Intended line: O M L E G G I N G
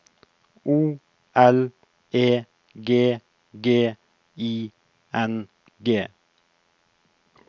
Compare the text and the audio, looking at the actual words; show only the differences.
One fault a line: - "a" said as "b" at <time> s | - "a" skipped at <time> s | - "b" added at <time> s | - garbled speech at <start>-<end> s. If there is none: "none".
- "M" skipped at 1.0 s